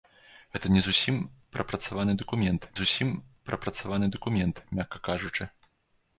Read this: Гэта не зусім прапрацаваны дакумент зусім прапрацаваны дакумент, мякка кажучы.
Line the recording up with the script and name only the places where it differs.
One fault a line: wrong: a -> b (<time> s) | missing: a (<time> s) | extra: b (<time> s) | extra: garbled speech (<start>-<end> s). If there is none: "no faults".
no faults